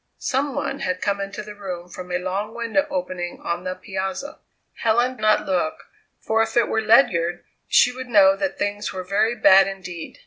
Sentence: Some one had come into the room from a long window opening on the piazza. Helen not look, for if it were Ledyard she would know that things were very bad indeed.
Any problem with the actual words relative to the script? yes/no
no